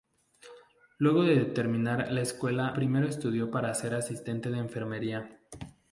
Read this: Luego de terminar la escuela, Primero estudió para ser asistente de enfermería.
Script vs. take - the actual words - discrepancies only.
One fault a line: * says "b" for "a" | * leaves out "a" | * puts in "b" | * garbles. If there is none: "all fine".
all fine